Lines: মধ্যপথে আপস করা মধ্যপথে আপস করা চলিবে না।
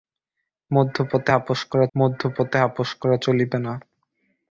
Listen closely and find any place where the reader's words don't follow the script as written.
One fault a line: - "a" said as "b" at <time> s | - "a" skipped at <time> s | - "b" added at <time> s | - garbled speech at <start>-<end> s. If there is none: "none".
none